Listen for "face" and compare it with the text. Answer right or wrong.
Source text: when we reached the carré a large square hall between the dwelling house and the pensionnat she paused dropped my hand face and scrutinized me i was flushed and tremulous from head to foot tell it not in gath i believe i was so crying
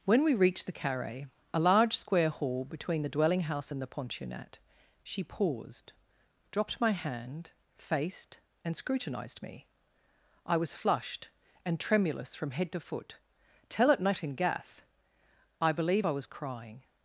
wrong